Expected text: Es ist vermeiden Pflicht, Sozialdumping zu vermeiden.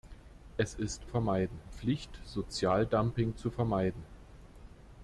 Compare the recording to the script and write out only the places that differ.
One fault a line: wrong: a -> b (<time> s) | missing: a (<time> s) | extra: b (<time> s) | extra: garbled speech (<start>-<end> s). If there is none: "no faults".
no faults